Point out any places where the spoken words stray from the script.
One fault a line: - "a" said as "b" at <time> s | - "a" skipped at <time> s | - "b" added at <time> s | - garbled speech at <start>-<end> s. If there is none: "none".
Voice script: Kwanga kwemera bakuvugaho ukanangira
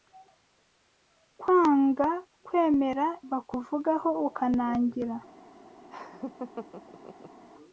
none